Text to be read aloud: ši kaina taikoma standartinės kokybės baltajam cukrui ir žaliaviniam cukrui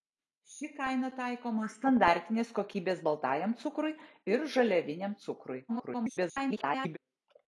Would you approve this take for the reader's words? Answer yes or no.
no